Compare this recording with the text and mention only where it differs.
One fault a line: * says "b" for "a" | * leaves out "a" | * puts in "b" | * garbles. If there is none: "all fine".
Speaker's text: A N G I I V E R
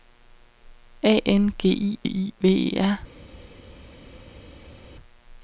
all fine